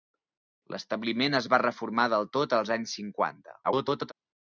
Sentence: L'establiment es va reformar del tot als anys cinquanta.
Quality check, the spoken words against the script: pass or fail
fail